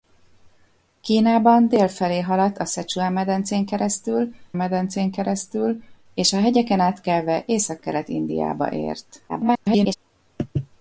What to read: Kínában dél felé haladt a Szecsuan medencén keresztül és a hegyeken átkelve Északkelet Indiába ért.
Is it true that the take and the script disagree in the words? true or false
true